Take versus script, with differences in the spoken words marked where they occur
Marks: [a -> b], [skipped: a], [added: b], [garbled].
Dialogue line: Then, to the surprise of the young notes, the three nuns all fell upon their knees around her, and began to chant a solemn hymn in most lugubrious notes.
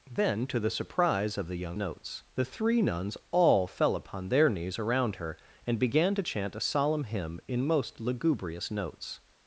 Then, to the surprise of the young notes, the three nuns all fell upon their knees around her, and began to chant a solemn hymn in most lugubrious notes.